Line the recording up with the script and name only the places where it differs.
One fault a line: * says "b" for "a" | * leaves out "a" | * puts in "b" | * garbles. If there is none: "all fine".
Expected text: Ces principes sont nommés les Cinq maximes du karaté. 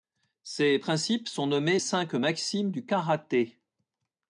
* leaves out "les"